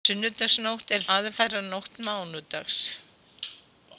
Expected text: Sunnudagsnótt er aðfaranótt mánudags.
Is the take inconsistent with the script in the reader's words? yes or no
no